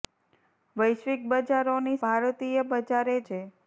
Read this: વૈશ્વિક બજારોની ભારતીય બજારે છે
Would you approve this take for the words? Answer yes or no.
yes